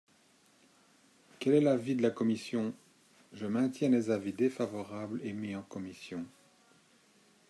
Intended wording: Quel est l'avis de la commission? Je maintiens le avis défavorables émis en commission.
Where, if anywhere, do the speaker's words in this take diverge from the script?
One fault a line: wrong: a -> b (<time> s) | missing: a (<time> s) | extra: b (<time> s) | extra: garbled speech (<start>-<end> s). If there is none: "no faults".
wrong: le -> les (3.9 s)